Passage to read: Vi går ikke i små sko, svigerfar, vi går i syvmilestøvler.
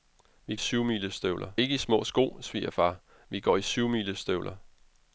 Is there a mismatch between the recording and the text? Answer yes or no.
yes